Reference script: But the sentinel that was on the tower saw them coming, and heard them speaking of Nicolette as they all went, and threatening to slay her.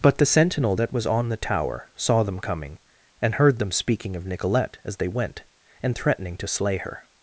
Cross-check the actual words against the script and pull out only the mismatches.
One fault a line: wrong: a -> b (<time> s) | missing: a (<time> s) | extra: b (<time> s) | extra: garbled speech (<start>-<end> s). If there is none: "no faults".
missing: all (5.1 s)